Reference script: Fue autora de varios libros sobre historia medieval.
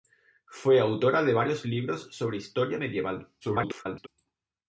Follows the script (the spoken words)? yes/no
no